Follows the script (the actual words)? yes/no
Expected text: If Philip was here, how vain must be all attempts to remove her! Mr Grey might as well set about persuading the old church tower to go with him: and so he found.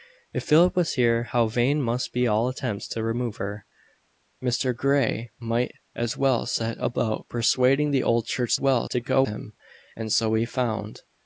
no